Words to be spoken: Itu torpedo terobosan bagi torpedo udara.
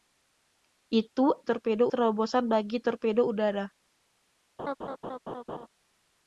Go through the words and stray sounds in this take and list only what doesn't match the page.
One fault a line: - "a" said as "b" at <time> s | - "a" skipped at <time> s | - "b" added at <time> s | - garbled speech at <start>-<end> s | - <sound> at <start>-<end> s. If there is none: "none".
- laugh at 4.6-5.7 s